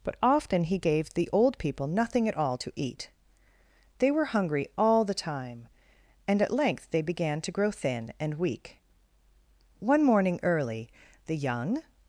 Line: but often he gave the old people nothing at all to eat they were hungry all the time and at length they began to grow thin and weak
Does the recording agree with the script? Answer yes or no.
no